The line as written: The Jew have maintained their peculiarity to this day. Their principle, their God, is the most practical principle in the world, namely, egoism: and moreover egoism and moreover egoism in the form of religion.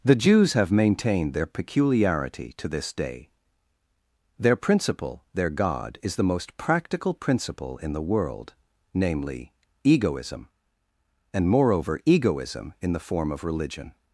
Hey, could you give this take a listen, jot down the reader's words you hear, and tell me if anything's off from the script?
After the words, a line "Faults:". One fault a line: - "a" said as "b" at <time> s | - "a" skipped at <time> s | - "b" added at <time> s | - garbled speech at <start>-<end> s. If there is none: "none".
The Jews have maintained their peculiarity to this day. Their principle, their God, is the most practical principle in the world, namely, egoism: and moreover egoism in the form of religion.
Faults:
- "Jew" said as "Jews" at 0.1 s
- "and moreover egoism" skipped at 12.7 s